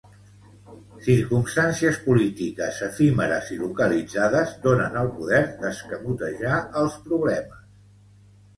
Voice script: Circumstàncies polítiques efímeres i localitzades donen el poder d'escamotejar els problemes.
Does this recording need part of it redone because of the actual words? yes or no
no